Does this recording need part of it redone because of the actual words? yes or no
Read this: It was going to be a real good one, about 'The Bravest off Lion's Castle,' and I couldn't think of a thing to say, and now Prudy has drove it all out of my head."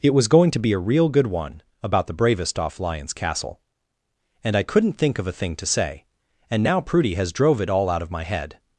no